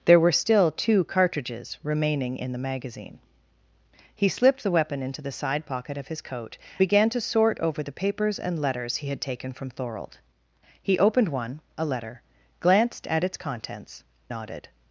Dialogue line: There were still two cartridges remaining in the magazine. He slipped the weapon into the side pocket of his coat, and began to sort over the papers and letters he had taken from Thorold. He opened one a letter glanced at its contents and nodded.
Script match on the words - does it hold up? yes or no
no